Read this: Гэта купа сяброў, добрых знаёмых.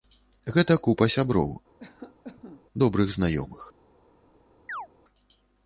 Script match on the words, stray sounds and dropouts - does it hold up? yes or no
no